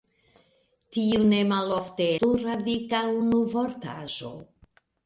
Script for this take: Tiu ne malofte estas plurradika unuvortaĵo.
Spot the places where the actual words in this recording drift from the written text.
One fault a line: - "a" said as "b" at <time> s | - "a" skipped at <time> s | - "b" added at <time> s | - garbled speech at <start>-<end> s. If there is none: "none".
- "estas" skipped at 2.1 s